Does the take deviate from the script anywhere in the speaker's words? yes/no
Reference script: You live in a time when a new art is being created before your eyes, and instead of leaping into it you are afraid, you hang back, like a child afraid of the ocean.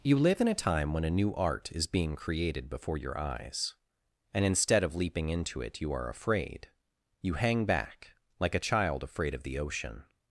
no